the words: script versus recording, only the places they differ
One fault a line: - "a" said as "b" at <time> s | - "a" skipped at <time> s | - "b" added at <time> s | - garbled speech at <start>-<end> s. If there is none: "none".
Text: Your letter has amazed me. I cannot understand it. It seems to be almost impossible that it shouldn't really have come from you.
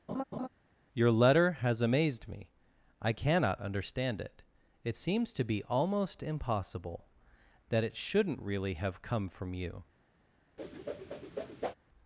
none